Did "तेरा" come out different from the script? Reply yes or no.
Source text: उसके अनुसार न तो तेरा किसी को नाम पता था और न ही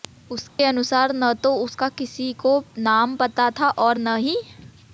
yes